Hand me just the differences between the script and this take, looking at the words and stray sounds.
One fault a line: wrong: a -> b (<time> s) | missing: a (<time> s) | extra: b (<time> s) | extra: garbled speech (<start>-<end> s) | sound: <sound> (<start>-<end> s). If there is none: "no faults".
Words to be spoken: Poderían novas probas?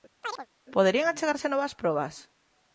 sound: chirp (0.2-0.5 s)
extra: achegarse (1.1 s)